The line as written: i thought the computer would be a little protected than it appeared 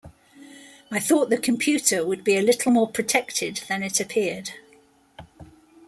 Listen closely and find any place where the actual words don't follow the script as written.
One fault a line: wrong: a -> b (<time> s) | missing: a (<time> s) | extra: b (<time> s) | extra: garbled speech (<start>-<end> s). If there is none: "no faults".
extra: more (2.7 s)